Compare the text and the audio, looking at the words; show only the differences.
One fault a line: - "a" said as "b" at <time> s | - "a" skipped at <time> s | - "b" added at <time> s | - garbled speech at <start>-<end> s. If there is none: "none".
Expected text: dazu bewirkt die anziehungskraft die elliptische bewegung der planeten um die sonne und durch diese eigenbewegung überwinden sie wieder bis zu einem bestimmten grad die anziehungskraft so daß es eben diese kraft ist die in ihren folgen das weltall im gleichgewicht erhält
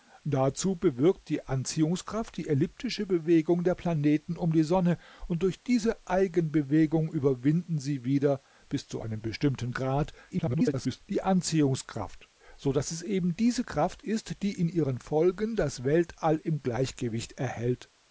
- garbled speech at 10.3-11.0 s